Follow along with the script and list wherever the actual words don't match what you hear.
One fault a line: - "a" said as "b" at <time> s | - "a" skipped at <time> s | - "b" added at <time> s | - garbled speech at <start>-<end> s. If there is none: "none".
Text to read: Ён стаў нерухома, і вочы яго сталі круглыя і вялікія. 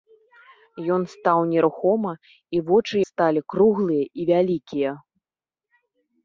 - "яго" skipped at 3.0 s